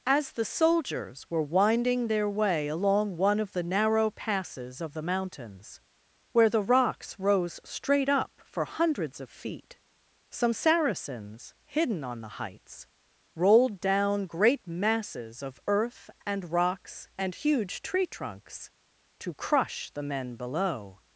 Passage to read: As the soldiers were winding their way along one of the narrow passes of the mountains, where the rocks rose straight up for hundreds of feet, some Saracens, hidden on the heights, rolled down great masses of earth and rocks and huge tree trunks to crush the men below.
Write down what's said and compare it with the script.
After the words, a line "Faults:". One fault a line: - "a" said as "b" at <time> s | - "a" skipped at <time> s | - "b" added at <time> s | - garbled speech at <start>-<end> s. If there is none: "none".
As the soldiers were winding their way along one of the narrow passes of the mountains, where the rocks rose straight up for hundreds of feet, some Saracens, hidden on the heights, rolled down great masses of earth and rocks and huge tree trunks to crush the men below.
Faults:
none